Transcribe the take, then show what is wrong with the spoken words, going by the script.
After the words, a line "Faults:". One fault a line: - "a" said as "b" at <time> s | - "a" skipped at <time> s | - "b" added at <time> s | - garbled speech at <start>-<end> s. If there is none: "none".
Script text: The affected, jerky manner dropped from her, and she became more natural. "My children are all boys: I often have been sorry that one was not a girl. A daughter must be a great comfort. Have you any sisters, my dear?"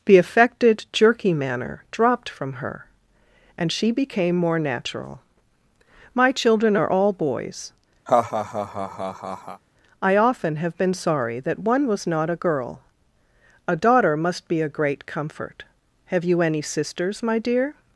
The affected, jerky manner dropped from her, and she became more natural. "My children are all boys: I often have been sorry that one was not a girl. A daughter must be a great comfort. Have you any sisters, my dear?"
Faults:
none